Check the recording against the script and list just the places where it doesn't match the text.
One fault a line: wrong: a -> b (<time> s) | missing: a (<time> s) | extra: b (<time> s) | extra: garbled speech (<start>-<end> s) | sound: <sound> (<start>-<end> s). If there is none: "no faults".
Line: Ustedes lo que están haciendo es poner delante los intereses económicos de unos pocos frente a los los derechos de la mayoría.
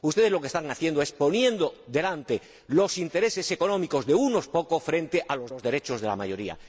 no faults